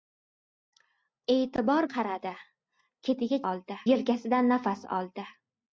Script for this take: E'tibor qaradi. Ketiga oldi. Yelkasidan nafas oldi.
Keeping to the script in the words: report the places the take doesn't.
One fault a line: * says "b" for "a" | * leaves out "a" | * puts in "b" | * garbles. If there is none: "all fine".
all fine